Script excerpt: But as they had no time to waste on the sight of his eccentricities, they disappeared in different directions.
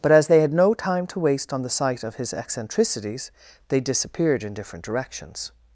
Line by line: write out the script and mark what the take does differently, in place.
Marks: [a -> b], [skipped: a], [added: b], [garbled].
But as they had no time to waste on the sight of his eccentricities, they disappeared in different directions.